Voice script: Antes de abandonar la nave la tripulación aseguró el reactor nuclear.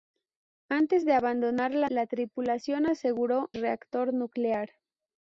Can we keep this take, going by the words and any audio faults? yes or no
no